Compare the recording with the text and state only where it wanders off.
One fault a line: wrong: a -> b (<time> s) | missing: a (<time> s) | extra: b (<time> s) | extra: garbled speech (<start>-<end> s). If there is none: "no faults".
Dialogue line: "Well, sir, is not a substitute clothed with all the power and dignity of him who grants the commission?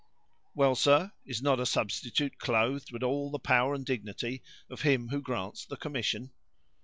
no faults